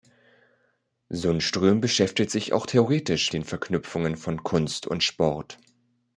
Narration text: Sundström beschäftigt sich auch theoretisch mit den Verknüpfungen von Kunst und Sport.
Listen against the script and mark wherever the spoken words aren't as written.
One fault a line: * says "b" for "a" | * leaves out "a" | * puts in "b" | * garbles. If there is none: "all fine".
* leaves out "mit"